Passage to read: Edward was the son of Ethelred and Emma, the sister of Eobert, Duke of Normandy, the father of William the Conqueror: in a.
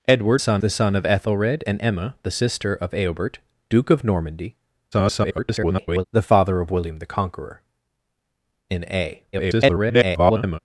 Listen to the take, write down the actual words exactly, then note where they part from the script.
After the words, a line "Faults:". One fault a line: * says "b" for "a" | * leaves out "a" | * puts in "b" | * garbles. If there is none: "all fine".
Edward son the son of Ethelred and Emma, the sister of Eobert, Duke of Normandy, [garbled] the father of William the Conqueror: in a. [garbled]
Faults:
* says "son" for "was"
* garbles
* garbles